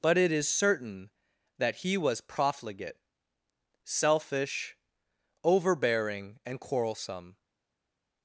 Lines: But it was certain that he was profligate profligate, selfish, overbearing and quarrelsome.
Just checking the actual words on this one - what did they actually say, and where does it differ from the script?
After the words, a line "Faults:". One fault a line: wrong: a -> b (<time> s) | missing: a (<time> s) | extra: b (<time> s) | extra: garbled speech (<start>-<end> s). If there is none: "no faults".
But it is certain that he was profligate, selfish, overbearing and quarrelsome.
Faults:
wrong: was -> is (0.3 s)
missing: profligate (3.0 s)